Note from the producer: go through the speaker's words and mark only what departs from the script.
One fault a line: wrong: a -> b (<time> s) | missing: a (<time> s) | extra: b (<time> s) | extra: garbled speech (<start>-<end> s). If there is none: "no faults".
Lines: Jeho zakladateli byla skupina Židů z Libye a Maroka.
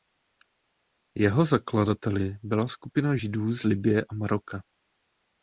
no faults